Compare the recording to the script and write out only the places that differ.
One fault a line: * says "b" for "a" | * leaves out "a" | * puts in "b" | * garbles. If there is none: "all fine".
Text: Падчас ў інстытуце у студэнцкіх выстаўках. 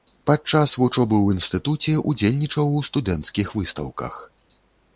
* puts in "вучобы"
* puts in "ўдзельнічаў"